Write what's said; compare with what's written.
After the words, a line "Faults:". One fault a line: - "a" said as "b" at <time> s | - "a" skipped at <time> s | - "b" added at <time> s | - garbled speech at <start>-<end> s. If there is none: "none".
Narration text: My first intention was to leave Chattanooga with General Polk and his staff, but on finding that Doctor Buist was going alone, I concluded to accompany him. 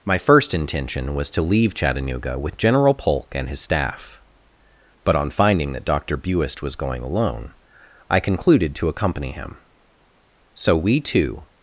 My first intention was to leave Chattanooga with General Polk and his staff, but on finding that Doctor Buist was going alone, I concluded to accompany him. So we two
Faults:
- "So we two" added at 10.5 s